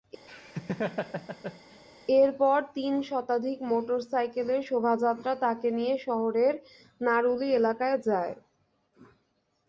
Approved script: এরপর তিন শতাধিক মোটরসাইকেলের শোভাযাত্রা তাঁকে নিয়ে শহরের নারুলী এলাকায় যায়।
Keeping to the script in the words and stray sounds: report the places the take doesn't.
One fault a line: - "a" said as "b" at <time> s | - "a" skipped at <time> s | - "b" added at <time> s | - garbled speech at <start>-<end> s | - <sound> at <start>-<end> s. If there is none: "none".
- laugh at 0.3-1.8 s